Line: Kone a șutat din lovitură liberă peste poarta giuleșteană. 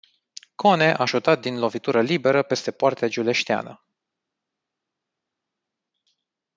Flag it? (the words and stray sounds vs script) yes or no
no